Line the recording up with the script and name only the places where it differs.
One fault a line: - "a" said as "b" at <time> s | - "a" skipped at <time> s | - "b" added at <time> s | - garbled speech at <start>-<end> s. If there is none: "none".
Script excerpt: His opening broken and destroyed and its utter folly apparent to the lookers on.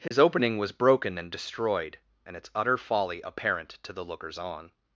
- "was" added at 0.6 s